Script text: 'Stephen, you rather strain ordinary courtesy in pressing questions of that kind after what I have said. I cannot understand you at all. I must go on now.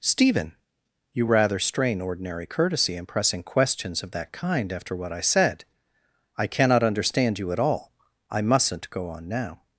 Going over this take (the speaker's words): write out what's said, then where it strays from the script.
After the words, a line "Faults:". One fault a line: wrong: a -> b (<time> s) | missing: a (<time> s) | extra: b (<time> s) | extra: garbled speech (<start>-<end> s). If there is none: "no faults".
'Stephen, you rather strain ordinary courtesy in pressing questions of that kind after what I said. I cannot understand you at all. I mustn't go on now.
Faults:
missing: have (5.2 s)
wrong: must -> mustn't (8.4 s)